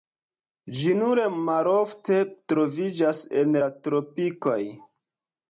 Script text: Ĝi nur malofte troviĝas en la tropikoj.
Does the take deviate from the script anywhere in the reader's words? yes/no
no